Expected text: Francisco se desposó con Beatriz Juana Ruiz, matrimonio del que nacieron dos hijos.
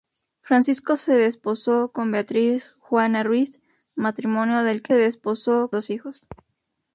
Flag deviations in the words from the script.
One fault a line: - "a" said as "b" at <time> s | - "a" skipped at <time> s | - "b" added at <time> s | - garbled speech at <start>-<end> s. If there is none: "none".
- "nacieron" said as "desposó" at 4.9 s